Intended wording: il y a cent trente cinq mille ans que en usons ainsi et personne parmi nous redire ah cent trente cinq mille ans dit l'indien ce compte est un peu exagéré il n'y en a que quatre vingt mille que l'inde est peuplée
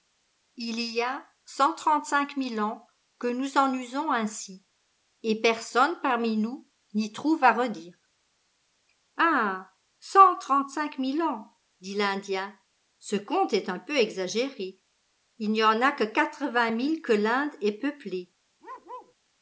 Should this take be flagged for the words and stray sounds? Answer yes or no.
yes